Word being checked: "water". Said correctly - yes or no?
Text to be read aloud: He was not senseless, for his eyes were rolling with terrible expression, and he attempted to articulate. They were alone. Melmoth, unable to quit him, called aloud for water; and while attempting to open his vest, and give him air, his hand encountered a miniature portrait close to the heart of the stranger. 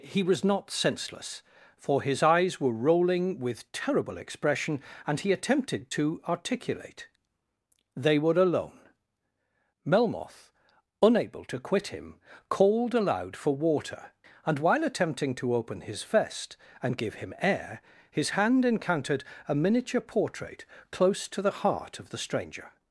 yes